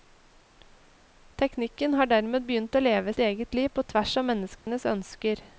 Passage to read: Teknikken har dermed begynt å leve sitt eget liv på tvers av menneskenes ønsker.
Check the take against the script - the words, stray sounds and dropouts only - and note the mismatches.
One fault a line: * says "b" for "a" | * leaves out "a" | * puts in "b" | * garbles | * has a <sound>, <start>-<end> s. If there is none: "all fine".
* leaves out "sitt"
* has a dropout, 4.6-4.7 s